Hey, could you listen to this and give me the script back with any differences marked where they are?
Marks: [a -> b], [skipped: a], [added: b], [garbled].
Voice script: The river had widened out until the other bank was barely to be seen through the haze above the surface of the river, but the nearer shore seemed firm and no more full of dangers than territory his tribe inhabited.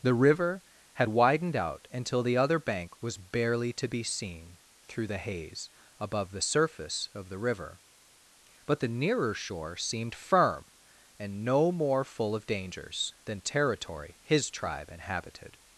The river had widened out until the other bank was barely to be seen through the haze above the surface of the river, but the nearer shore seemed firm and no more full of dangers than territory his tribe inhabited.